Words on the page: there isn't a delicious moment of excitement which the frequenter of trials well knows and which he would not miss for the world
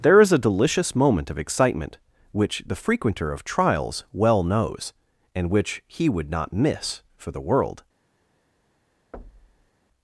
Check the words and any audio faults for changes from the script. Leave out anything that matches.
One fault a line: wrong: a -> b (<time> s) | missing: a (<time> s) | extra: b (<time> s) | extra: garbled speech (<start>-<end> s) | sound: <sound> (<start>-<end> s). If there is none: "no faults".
wrong: isn't -> is (0.2 s)
sound: thud (9.1-9.7 s)